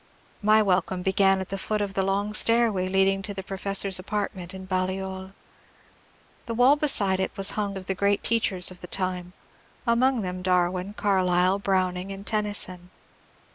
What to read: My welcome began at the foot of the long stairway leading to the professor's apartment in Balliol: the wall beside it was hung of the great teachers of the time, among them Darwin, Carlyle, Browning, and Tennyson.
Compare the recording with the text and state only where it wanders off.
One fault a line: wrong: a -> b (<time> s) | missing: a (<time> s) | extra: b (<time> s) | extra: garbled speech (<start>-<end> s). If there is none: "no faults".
no faults